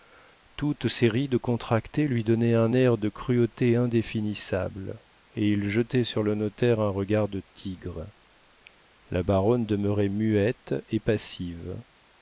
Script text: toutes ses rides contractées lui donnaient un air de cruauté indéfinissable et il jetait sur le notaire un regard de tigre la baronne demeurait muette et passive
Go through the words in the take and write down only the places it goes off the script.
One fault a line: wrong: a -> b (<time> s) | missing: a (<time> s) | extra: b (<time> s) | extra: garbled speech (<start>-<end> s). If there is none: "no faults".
no faults